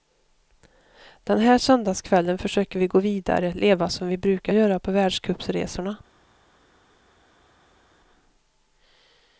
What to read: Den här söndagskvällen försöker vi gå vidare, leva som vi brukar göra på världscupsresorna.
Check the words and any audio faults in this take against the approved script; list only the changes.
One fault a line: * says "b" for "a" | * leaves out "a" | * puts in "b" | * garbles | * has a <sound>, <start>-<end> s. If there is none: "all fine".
all fine